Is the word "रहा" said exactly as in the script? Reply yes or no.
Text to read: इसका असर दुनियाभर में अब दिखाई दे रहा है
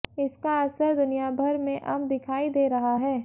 yes